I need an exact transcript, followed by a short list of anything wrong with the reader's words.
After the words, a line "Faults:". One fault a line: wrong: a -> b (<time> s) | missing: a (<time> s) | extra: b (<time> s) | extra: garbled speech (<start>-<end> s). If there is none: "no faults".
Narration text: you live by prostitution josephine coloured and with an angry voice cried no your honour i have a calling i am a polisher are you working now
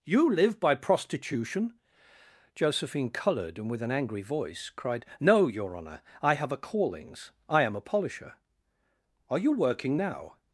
you live by prostitution josephine coloured and with an angry voice cried no your honour i have a callings i am a polisher are you working now
Faults:
wrong: calling -> callings (6.6 s)